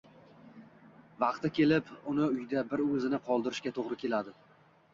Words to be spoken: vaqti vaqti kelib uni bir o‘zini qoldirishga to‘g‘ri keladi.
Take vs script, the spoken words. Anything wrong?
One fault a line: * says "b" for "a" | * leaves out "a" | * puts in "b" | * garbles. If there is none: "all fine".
* leaves out "vaqti"
* puts in "uyda"